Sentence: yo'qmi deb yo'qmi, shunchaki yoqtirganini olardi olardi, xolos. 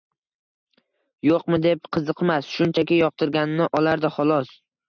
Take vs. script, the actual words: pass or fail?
fail